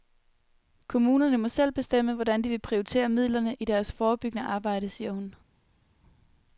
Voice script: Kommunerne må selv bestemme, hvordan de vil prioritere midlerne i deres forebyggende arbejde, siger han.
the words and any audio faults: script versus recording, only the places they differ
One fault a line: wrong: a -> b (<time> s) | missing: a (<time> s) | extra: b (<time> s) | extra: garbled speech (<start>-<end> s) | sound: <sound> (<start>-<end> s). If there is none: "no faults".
wrong: han -> hun (5.1 s)